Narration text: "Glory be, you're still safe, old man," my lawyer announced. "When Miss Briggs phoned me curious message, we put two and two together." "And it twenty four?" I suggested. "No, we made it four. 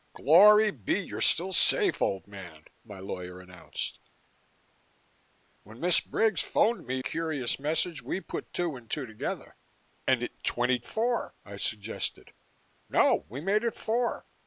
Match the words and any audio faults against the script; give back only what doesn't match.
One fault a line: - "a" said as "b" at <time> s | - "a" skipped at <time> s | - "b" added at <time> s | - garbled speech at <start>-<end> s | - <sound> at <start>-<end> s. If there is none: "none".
none